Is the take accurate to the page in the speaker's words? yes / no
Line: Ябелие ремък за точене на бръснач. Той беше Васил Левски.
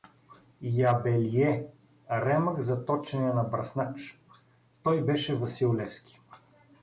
yes